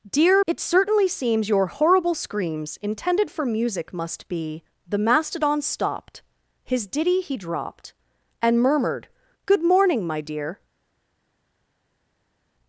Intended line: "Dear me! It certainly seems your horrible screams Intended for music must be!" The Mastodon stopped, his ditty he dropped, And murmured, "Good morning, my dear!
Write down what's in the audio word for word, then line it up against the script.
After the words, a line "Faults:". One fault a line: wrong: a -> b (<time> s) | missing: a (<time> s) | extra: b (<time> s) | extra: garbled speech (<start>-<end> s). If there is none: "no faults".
"Dear! It certainly seems your horrible screams Intended for music must be!" The Mastodon stopped, his ditty he dropped, And murmured, "Good morning, my dear!
Faults:
missing: me (0.4 s)